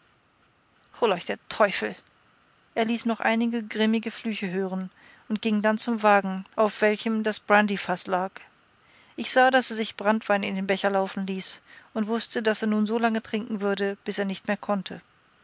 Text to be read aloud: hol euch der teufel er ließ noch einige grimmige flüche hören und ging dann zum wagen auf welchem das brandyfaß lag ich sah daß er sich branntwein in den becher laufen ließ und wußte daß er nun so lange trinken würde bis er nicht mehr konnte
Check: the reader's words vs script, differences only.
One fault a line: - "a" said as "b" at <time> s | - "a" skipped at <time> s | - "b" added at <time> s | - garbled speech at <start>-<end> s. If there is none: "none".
none